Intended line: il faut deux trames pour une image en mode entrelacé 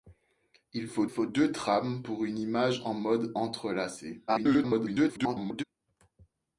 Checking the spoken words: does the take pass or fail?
fail